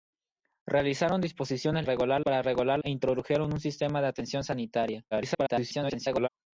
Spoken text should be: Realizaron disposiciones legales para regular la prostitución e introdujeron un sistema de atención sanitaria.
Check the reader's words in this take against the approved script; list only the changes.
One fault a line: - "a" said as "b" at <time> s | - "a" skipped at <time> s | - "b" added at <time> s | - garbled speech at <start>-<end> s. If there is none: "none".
- "legales" said as "regular" at 1.8 s
- "la prostitución" skipped at 2.8 s
- garbled speech at 5.1-6.3 s